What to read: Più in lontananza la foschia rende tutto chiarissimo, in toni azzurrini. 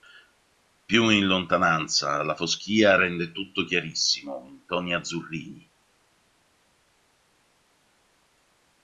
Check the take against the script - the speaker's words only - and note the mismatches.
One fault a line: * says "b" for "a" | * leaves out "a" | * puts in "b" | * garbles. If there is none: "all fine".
all fine